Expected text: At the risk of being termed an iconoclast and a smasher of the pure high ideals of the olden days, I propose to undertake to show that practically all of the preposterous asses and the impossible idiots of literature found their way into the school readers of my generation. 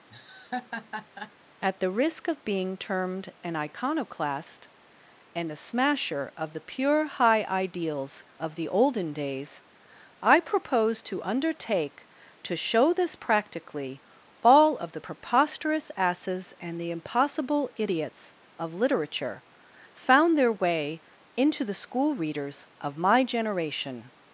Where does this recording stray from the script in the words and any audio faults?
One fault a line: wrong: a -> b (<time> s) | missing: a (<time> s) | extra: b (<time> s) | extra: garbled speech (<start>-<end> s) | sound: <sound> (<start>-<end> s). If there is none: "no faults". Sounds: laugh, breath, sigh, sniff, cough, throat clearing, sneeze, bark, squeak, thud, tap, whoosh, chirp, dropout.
sound: laugh (0.1-1.3 s)
wrong: that -> this (12.9 s)